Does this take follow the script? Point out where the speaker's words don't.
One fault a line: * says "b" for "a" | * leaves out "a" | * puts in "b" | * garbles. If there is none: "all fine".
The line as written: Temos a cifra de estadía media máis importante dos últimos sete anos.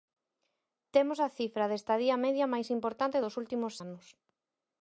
* leaves out "sete"